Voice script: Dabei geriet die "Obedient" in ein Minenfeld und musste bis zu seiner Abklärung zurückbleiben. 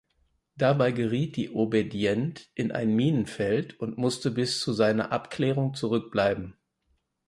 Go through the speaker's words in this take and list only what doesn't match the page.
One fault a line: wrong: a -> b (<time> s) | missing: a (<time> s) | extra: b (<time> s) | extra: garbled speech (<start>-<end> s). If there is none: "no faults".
no faults